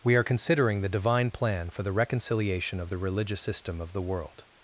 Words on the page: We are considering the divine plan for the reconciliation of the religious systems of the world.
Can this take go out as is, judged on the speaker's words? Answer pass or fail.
fail